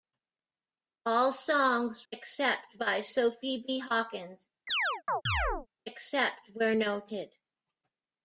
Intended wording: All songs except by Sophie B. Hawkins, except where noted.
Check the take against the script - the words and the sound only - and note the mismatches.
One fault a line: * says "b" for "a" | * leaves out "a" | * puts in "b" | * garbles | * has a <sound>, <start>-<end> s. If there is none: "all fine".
* has a chirp, 4.7-5.7 s